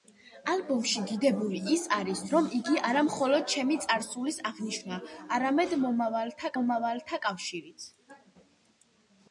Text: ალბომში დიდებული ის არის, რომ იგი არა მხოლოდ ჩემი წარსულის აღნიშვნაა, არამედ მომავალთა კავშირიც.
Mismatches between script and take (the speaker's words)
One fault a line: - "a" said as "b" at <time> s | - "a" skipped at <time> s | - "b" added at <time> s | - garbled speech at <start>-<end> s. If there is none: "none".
- "მომავალთა" added at 6.6 s